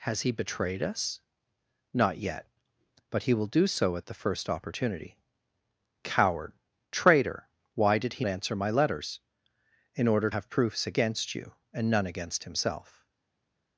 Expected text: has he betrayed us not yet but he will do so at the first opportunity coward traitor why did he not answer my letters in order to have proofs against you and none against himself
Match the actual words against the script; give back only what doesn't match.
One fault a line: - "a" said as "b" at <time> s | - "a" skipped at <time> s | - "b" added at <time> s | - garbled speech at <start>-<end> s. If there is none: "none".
- "not" skipped at 8.2 s
- "to" skipped at 10.3 s